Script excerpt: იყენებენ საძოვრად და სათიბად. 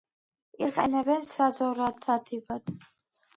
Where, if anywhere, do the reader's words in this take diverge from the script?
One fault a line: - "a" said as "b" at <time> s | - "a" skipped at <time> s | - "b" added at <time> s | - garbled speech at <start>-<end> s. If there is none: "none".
- "და" skipped at 2.0 s